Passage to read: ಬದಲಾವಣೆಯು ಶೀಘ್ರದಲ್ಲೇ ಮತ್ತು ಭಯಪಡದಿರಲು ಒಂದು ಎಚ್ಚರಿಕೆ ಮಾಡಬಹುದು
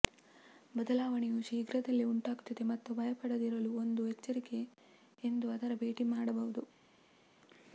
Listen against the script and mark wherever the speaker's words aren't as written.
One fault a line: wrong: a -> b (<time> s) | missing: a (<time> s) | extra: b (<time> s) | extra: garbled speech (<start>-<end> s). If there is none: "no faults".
extra: ಉಂಟಾಗುತ್ತದೆ (2.0 s)
extra: ಎಂದು ಅದರ ಭೇಟಿ (5.2 s)